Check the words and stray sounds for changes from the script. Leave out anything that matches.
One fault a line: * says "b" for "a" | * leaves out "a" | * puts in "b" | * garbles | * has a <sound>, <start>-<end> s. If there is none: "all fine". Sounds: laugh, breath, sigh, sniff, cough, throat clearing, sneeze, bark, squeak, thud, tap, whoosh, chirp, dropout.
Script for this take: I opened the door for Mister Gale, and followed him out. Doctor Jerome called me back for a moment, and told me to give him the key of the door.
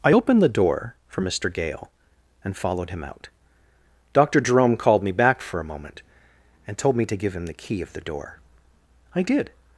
* puts in "I did"